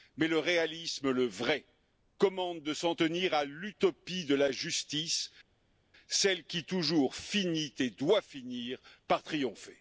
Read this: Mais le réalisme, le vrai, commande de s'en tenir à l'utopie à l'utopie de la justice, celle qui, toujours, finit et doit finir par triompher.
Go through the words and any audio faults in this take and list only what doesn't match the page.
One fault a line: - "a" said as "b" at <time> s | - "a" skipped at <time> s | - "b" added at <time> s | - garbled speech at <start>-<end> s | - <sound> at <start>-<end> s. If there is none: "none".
- "à l'utopie" skipped at 4.2 s